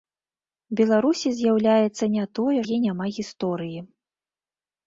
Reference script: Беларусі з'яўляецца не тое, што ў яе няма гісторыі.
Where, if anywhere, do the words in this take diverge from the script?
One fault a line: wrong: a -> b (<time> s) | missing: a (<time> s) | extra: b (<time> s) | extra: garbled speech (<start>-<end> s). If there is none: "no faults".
missing: што ў (2.5 s)